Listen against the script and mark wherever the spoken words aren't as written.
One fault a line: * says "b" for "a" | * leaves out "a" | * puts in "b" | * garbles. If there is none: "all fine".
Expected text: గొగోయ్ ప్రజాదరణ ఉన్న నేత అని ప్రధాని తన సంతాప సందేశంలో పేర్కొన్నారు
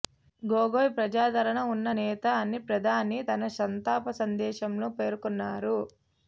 all fine